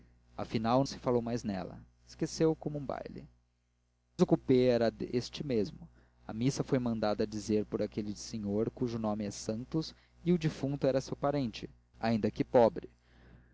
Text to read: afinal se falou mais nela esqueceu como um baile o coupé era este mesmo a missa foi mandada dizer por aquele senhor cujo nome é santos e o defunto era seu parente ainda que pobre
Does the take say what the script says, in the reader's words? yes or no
yes